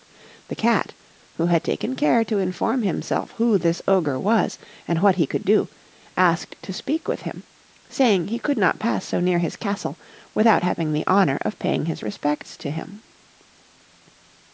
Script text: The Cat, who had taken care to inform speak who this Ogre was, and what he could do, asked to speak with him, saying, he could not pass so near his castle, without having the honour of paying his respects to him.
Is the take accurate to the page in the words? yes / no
no